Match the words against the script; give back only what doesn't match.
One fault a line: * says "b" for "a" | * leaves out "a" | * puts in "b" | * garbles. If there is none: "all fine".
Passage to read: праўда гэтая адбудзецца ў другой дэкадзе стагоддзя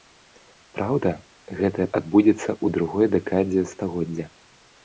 all fine